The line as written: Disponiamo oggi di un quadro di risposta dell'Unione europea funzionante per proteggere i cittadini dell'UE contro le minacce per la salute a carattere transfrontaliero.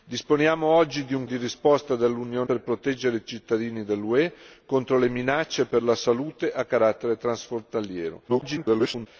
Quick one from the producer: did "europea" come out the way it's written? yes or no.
no